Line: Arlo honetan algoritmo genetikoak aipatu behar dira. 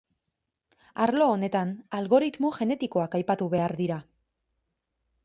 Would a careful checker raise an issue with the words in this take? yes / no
no